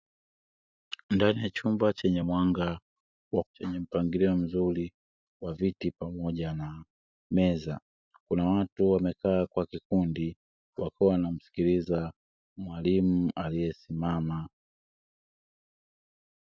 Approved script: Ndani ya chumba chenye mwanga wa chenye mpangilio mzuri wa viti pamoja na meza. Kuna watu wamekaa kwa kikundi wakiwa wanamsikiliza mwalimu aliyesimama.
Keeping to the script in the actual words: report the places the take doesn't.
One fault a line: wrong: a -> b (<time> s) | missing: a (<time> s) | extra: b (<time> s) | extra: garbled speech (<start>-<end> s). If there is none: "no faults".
no faults